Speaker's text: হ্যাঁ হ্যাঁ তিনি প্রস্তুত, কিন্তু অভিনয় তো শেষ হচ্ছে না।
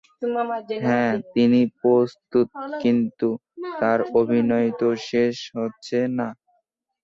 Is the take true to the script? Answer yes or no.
no